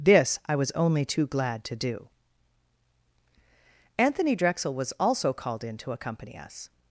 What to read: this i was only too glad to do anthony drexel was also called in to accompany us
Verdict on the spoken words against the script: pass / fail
pass